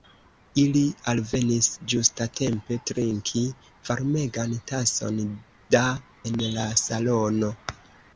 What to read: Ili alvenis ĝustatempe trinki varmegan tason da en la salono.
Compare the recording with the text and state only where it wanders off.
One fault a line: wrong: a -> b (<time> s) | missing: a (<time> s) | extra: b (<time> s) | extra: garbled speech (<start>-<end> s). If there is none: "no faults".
no faults